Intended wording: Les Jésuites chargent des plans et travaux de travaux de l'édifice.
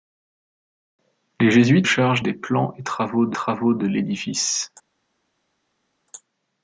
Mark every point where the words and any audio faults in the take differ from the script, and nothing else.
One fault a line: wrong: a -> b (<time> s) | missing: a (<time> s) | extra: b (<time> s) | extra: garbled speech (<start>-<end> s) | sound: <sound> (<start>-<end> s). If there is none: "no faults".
no faults